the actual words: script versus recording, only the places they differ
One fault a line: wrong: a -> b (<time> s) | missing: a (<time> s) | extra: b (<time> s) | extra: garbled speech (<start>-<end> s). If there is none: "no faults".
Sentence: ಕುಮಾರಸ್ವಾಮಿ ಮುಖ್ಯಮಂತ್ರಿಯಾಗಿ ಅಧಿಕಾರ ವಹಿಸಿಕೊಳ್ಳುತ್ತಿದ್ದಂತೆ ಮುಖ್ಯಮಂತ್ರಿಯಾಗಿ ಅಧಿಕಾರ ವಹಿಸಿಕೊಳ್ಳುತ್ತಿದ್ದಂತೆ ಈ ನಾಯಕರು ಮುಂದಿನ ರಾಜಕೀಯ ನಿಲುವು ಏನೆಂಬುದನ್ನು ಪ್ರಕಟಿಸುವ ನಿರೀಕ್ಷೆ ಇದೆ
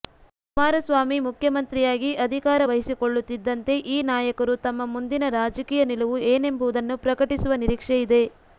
missing: ಮುಖ್ಯಮಂತ್ರಿಯಾಗಿ ಅಧಿಕಾರ ವಹಿಸಿಕೊಳ್ಳುತ್ತಿದ್ದಂತೆ (3.7 s)
extra: ತಮ್ಮ (4.6 s)